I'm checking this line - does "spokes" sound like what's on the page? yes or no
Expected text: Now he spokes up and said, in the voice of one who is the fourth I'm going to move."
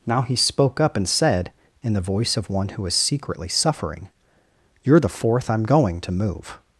no